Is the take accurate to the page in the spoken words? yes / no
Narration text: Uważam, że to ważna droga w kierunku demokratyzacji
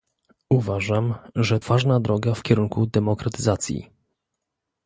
no